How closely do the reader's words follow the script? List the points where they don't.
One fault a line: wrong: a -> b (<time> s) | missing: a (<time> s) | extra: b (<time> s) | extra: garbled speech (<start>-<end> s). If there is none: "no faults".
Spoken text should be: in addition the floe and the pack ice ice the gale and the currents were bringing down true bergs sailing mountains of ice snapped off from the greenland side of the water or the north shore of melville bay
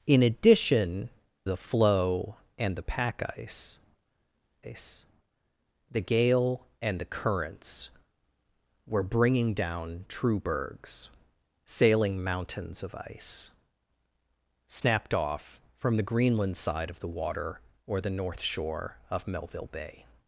no faults